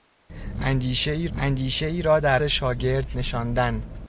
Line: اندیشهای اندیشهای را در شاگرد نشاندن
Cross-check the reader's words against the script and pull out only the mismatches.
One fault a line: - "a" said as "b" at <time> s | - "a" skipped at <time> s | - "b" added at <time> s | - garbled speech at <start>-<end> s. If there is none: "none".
none